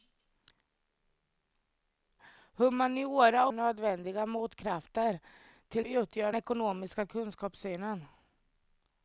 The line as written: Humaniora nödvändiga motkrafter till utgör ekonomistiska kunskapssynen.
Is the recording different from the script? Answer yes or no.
no